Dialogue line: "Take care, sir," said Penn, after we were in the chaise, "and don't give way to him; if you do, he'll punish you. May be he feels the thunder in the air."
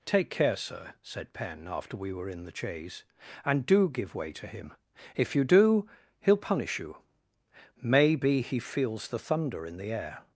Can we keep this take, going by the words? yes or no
no